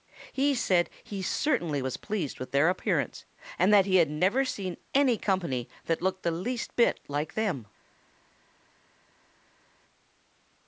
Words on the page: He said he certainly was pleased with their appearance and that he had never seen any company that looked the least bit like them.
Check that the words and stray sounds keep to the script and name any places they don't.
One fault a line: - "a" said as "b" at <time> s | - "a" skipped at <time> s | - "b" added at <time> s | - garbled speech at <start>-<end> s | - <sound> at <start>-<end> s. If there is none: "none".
none